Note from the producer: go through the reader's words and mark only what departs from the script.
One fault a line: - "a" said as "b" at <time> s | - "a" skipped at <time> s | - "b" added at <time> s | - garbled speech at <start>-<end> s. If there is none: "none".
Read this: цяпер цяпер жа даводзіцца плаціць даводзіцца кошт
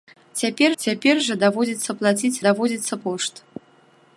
none